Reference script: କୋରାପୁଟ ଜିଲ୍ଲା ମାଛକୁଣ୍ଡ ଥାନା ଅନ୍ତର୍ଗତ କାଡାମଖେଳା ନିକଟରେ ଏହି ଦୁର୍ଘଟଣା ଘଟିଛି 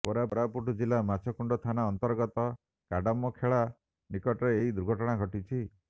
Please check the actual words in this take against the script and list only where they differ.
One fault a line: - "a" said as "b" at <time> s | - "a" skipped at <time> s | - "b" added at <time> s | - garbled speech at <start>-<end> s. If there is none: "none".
none